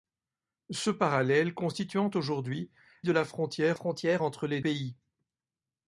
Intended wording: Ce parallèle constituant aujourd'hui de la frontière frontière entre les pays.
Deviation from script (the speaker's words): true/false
false